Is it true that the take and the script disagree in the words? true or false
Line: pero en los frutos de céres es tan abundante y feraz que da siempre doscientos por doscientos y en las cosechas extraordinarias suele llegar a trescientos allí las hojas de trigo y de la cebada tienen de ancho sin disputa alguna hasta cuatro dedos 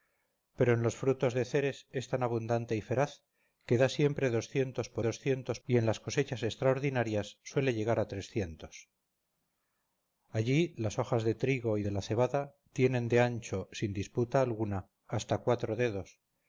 false